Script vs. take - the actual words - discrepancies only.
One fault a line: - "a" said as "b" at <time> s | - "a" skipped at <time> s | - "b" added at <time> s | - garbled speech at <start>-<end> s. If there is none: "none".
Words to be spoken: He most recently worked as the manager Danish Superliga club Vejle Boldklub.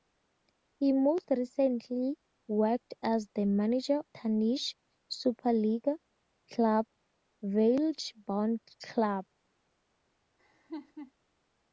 none